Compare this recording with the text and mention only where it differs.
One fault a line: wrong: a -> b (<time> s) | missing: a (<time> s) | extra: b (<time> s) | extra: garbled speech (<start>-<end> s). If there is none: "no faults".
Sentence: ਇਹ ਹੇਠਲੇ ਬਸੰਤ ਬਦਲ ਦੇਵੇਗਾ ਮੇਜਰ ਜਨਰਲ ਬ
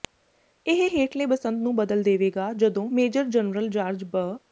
extra: ਨੂੰ (1.6 s)
extra: ਜਦੋਂ (2.5 s)
extra: ਜਾਰਜ (3.7 s)